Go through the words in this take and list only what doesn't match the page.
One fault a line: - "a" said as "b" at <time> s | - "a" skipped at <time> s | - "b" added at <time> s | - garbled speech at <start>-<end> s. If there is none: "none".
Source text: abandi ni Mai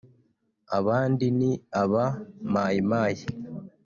- "aba Mai" added at 1.8 s